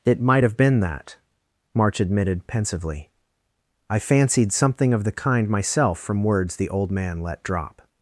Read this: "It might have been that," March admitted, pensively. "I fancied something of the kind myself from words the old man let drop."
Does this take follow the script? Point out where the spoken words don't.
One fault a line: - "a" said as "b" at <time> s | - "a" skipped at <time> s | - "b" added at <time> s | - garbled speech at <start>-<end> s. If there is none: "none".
none